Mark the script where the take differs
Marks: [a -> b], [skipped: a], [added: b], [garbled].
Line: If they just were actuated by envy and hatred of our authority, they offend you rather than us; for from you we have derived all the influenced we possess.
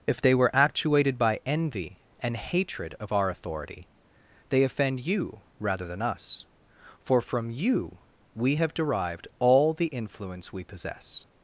If they [skipped: just] were actuated by envy and hatred of our authority, they offend you rather than us; for from you we have derived all the [influenced -> influence] we possess.